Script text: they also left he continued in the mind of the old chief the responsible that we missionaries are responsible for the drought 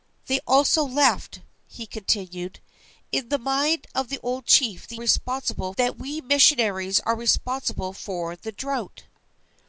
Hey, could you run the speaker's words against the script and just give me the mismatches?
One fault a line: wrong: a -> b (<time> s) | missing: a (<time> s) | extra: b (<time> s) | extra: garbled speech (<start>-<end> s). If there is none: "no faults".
no faults